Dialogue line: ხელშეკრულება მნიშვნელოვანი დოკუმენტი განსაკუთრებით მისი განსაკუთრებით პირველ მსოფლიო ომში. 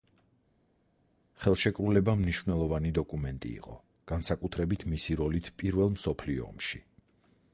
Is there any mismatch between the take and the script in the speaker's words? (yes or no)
yes